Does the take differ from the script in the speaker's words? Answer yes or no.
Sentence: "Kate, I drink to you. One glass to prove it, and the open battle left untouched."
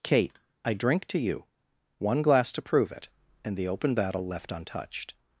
no